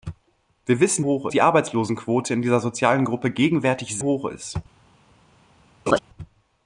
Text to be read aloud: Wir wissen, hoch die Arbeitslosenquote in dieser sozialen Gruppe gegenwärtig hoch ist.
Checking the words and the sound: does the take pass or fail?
fail